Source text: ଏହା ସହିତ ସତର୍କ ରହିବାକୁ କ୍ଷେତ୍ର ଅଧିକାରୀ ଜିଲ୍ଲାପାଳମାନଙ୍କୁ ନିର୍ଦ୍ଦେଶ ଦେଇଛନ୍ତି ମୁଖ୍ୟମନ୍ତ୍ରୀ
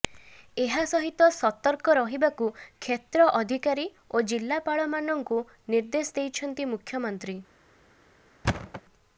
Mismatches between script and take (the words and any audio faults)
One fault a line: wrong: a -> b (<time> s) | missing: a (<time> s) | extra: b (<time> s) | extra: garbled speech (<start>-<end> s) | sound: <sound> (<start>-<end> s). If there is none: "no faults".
extra: ଓ (4.1 s)
sound: thud (8.4-8.8 s)